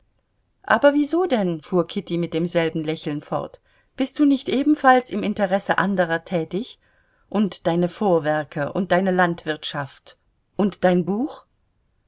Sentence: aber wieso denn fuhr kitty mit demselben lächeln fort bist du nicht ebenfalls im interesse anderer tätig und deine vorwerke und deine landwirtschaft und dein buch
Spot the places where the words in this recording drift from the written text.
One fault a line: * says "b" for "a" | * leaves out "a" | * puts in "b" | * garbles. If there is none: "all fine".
all fine